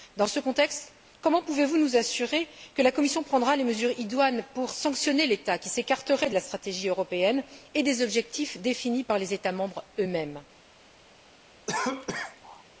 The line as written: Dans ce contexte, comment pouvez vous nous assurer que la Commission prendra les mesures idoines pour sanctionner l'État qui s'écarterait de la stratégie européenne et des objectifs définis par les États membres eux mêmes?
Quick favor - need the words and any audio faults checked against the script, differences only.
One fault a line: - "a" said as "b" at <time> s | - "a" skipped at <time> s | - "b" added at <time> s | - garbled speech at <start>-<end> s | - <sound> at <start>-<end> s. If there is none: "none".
- cough at 11.7-12.6 s